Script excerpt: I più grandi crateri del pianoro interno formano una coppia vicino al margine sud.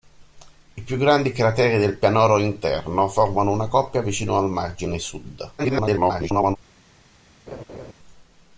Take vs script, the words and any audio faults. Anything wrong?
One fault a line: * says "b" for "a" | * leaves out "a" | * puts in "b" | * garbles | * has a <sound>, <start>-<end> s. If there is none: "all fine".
* garbles
* has a laugh, 7.5-7.9 s